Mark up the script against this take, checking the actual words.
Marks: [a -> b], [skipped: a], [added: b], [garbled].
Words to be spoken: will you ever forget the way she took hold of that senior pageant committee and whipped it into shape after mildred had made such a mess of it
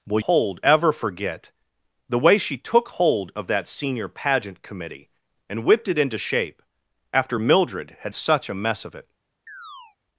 will [you -> hold] ever forget the way she took hold of that senior pageant committee and whipped it into shape after mildred had [skipped: made] such a mess of it